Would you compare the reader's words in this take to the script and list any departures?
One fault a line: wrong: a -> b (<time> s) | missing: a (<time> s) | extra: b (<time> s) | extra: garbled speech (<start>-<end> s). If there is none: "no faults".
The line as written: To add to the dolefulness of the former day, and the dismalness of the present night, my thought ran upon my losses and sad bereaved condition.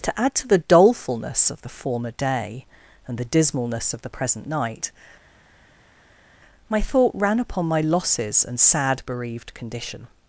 no faults